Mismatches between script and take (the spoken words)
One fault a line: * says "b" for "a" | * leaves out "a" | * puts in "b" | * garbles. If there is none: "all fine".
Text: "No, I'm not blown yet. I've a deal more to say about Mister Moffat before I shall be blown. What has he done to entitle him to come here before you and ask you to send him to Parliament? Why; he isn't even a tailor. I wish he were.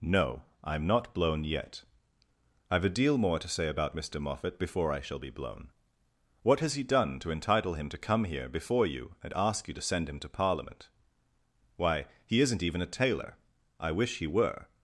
all fine